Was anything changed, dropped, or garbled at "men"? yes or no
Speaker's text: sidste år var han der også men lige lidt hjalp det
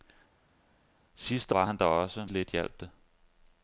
yes